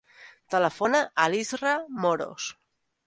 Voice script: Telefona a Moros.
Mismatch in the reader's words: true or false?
true